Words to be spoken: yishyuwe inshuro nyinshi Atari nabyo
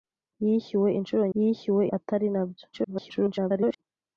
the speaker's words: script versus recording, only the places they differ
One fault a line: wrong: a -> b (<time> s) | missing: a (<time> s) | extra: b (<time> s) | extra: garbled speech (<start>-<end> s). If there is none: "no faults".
wrong: nyinshi -> yishyuwe (1.4 s)
extra: garbled speech (2.7-3.8 s)